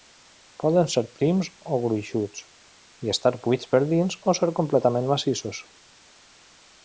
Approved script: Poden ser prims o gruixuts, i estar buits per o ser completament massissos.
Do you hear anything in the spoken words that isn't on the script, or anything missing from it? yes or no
yes